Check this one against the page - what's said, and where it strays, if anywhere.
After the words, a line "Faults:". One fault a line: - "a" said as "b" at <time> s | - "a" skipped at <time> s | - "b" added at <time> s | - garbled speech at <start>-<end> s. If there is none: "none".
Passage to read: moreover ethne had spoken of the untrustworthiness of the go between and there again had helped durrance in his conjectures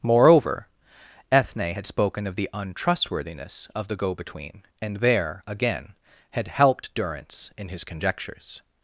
moreover ethne had spoken of the untrustworthiness of the go between and there again had helped durrance in his conjectures
Faults:
none